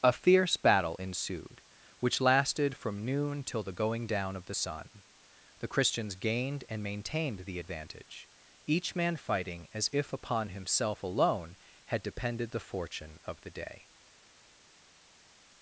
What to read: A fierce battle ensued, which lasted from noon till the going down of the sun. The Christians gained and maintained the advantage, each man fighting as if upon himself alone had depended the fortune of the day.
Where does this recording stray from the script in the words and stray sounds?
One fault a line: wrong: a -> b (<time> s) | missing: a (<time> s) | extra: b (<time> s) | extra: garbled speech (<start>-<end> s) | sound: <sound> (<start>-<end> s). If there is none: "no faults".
no faults